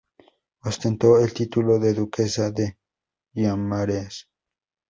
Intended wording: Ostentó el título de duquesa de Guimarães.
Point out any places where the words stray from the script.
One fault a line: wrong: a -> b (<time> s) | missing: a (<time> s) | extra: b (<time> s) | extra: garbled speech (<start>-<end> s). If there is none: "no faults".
no faults